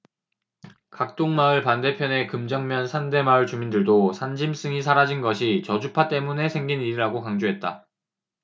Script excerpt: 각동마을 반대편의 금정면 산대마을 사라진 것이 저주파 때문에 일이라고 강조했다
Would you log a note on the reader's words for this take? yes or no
yes